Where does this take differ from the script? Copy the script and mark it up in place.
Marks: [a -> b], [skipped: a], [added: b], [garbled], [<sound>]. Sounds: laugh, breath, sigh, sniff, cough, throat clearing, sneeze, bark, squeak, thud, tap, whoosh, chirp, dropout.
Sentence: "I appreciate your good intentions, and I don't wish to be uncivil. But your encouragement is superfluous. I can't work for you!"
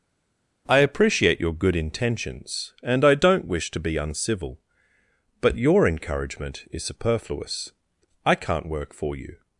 "I appreciate your good intentions, and I don't wish to be uncivil. But your encouragement is superfluous. I can't work for you!"